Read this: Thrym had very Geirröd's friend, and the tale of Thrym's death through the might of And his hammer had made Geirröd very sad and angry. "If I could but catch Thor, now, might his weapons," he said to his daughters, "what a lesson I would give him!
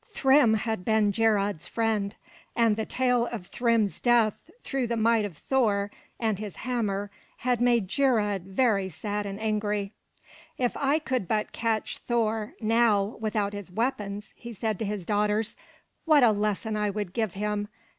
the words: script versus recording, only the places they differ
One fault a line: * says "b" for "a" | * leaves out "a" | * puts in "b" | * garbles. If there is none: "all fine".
* says "been" for "very"
* puts in "Thor"
* says "without" for "might"